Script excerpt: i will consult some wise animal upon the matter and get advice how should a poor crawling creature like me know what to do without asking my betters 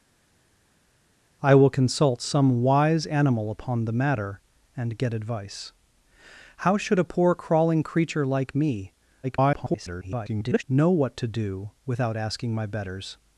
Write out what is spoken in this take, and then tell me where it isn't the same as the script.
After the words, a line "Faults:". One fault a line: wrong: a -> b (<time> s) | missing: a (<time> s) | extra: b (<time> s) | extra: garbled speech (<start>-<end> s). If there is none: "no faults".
i will consult some wise animal upon the matter and get advice how should a poor crawling creature like me [garbled] know what to do without asking my betters
Faults:
extra: garbled speech (9.2-10.6 s)